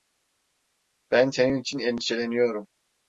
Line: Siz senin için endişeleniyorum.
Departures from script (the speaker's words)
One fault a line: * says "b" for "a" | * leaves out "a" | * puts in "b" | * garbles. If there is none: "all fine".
* says "Ben" for "Siz"